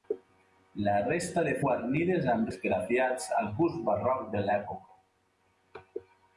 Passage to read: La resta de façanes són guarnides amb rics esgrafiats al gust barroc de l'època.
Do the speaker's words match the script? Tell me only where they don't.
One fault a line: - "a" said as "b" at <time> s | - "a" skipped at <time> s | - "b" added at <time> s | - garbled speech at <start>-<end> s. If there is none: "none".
- "façanes són" skipped at 1.5 s
- "rics" skipped at 2.5 s